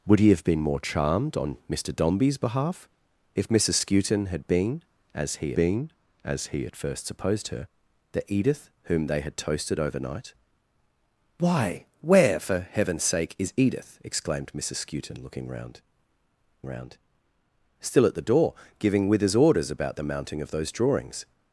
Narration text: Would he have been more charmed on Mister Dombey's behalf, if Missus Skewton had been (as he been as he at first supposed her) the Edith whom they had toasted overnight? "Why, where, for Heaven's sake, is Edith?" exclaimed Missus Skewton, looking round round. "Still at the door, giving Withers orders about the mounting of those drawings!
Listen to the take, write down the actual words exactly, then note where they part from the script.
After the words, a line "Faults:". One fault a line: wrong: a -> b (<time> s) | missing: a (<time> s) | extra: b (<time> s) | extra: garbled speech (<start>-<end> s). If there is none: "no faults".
Would he have been more charmed on Mister Dombey's behalf, if Missus Skewton had been (as he been as he at first supposed her) the Edith whom they had toasted overnight? "Why, where, for Heaven's sake, is Edith?" exclaimed Missus Skewton, looking round round. "Still at the door, giving Withers orders about the mounting of those drawings!
Faults:
no faults